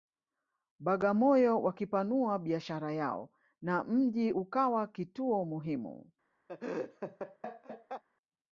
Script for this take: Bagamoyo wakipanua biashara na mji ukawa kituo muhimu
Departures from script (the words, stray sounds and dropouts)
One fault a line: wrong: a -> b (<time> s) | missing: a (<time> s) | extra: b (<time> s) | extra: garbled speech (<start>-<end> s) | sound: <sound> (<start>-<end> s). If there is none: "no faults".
extra: yao (2.9 s)
sound: laugh (6.5-8.0 s)